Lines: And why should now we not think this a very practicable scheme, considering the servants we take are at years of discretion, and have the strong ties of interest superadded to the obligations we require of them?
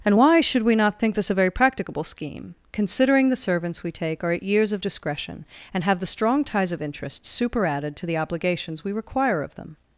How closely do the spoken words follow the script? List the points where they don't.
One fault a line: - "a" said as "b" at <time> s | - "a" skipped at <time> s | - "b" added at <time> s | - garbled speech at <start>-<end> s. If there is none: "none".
- "now" skipped at 0.6 s